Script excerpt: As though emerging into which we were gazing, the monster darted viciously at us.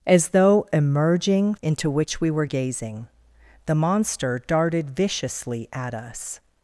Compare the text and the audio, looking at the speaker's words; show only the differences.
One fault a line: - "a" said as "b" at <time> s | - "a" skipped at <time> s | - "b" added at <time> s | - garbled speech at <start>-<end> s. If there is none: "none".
none